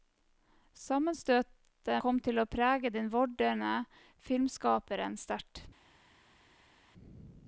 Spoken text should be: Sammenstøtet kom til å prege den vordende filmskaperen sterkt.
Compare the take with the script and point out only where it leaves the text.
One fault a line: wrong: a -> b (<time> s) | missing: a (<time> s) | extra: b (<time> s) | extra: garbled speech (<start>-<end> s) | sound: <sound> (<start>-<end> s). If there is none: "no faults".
no faults